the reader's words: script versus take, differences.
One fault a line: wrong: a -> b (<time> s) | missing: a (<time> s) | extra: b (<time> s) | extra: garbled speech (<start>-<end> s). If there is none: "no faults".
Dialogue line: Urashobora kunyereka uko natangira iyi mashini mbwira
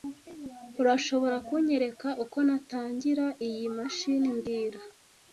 no faults